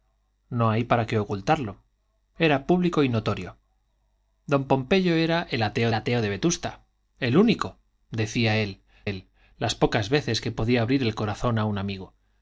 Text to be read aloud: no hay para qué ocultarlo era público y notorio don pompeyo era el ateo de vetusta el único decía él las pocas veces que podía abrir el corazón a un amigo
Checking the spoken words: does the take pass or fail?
fail